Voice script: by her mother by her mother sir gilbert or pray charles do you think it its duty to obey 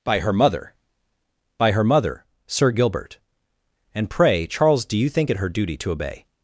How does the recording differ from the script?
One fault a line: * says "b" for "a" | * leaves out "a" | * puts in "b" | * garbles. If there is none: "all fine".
* says "and" for "or"
* says "her" for "its"